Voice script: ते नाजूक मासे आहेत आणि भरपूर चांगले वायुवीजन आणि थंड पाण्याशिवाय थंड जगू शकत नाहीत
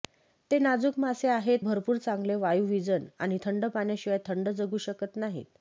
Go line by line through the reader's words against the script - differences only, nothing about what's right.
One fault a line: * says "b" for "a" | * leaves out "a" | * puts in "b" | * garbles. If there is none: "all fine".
* leaves out "आणि"